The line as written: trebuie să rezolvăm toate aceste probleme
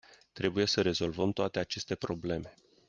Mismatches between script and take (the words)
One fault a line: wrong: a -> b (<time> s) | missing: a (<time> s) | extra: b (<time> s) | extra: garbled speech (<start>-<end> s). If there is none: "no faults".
no faults